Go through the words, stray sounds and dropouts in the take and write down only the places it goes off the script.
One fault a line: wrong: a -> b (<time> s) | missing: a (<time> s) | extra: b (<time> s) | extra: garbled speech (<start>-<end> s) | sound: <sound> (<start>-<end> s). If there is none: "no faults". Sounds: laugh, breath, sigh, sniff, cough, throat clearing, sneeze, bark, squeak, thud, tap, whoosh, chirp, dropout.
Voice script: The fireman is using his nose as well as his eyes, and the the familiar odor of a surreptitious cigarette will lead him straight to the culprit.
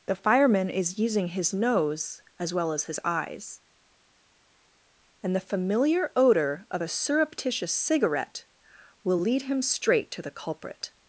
missing: the (5.5 s)